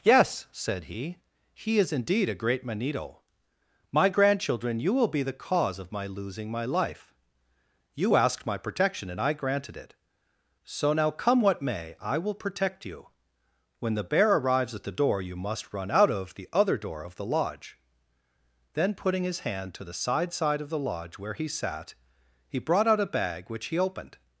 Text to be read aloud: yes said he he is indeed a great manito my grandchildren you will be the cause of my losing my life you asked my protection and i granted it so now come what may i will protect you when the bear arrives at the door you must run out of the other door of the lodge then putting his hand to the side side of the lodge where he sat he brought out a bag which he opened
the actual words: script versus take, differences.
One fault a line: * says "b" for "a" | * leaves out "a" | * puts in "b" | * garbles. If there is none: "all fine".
all fine